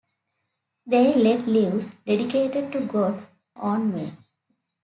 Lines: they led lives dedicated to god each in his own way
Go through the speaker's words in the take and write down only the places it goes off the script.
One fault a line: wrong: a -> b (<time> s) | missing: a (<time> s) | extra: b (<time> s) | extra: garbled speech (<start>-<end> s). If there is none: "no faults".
missing: each in his (3.3 s)